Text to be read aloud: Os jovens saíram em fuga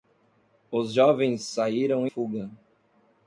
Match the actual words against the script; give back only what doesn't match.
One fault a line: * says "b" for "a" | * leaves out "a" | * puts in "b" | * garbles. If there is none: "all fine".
* leaves out "em"